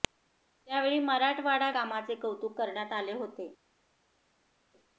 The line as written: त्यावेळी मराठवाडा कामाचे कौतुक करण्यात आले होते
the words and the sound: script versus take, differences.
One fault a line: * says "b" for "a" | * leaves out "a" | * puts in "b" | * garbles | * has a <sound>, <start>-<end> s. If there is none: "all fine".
all fine